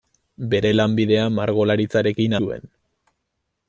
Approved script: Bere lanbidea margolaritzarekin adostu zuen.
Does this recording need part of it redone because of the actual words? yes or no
yes